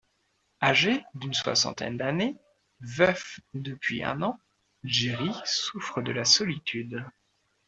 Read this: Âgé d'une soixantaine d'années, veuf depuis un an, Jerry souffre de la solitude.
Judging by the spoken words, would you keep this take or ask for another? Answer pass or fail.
pass